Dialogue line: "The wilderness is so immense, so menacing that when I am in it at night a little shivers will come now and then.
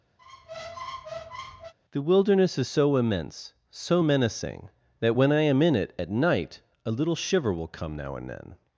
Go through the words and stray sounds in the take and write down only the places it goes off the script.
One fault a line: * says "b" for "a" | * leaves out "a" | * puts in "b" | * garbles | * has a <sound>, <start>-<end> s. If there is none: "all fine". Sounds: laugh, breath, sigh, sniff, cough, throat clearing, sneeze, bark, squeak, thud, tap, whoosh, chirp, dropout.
* has a squeak, 0.2-1.7 s
* says "shiver" for "shivers"